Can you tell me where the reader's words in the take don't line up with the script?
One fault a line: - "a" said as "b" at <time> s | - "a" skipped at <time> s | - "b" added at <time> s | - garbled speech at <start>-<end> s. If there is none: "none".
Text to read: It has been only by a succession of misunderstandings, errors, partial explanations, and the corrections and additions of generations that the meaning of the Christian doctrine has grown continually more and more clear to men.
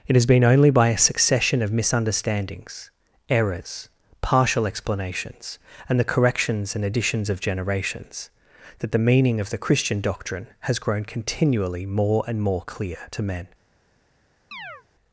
none